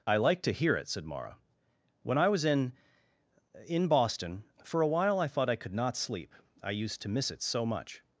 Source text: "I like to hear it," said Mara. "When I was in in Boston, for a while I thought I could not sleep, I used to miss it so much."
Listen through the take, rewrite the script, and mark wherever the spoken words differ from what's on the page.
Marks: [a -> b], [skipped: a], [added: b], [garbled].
"I like to hear it," said Mara. "When I was in in Boston, for a while I thought I could not sleep, I used to miss it so much."